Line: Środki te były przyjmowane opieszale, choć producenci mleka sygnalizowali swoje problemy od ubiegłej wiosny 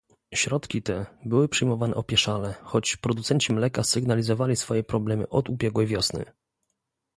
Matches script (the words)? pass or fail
pass